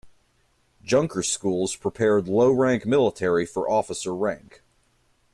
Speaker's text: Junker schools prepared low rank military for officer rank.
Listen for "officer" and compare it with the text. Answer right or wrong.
right